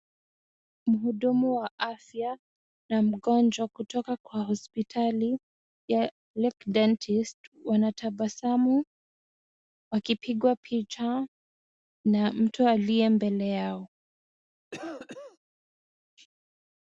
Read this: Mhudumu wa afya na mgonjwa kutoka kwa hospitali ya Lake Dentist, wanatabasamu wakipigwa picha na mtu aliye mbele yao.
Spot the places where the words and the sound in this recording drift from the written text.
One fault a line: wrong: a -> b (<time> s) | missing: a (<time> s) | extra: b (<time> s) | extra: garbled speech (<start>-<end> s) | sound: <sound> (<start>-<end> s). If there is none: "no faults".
sound: cough (14.7-15.4 s)